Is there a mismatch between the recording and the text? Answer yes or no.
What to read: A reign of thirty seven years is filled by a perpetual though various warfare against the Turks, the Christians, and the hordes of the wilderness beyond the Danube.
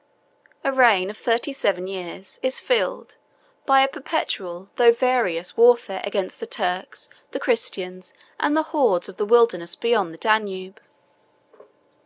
no